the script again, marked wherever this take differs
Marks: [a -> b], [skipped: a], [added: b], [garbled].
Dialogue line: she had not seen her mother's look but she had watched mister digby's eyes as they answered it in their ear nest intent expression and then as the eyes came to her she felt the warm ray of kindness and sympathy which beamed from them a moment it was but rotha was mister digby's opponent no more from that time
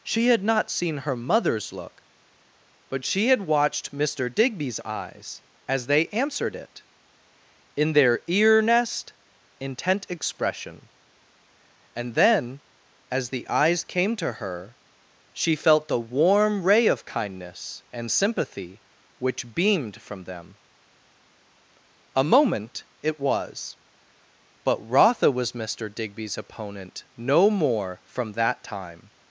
she had not seen her mother's look but she had watched mister digby's eyes as they answered it in their ear nest intent expression and then as the eyes came to her she felt the warm ray of kindness and sympathy which beamed from them a moment it was but rotha was mister digby's opponent no more from that time